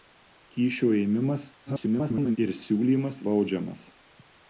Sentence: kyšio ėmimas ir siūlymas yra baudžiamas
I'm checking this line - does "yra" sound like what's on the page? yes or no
no